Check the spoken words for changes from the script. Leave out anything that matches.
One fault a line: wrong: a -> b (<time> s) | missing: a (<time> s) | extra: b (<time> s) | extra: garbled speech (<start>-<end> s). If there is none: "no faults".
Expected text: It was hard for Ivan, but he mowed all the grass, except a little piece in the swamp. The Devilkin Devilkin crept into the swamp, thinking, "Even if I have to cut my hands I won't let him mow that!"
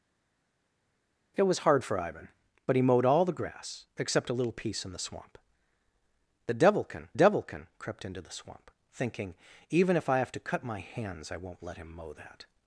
no faults